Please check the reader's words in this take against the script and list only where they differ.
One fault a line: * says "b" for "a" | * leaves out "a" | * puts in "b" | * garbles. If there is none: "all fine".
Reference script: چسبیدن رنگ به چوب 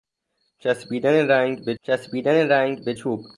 * puts in "چسبیدن رنگ به"